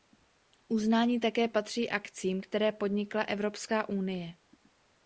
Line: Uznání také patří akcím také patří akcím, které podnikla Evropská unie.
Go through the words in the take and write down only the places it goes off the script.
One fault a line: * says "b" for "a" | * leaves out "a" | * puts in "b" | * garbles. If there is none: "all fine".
* leaves out "také patří akcím"